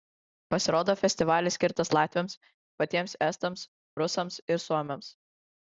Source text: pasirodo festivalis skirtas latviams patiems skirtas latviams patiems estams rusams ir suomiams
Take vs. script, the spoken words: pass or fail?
fail